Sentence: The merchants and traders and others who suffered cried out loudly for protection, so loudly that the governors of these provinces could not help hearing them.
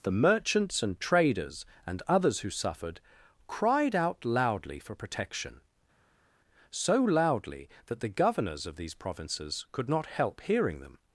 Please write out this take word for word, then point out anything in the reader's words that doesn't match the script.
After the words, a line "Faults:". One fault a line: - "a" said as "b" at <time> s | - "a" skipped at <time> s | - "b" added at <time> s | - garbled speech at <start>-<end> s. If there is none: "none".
The merchants and traders and others who suffered cried out loudly for protection, so loudly that the governors of these provinces could not help hearing them.
Faults:
none